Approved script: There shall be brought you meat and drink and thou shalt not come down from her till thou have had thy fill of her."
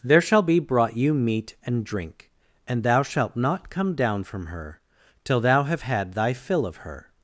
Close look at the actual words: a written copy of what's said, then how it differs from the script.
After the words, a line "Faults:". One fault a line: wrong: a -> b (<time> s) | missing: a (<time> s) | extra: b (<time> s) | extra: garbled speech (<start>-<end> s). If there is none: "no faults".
There shall be brought you meat and drink and thou shalt not come down from her till thou have had thy fill of her."
Faults:
no faults